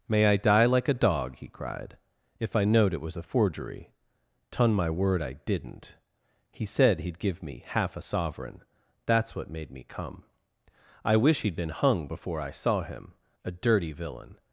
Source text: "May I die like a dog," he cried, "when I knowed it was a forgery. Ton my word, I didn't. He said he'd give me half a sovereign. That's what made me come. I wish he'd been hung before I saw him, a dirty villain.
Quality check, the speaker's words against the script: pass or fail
fail